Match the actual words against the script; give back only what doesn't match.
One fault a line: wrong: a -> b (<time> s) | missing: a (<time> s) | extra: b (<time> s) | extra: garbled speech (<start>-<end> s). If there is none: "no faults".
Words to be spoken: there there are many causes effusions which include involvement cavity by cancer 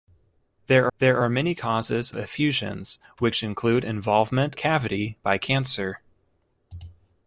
no faults